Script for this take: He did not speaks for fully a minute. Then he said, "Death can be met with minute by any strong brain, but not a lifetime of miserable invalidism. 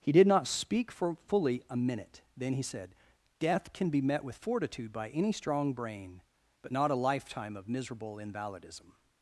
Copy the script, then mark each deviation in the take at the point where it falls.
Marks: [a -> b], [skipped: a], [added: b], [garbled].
He did not [speaks -> speak] for fully a minute. Then he said, "Death can be met with [minute -> fortitude] by any strong brain, but not a lifetime of miserable invalidism.